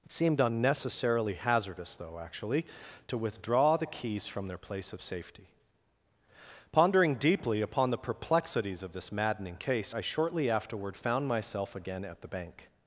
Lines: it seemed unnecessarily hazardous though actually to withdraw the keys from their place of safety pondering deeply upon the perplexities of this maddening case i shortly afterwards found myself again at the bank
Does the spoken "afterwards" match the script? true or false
false